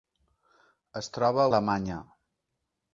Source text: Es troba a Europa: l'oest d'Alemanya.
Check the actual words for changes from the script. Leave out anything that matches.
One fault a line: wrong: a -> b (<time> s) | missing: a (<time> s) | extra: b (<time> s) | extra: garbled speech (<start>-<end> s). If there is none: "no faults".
missing: Europa l'oest (1.5 s)